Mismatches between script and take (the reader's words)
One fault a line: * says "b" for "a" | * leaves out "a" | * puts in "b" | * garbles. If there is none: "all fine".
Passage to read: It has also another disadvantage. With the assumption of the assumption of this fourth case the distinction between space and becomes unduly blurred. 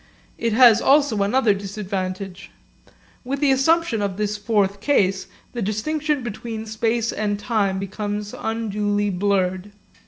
* leaves out "the assumption of"
* puts in "time"